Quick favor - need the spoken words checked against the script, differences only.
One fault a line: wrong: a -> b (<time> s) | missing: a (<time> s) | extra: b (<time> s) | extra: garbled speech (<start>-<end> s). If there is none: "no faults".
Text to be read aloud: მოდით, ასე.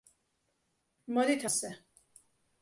no faults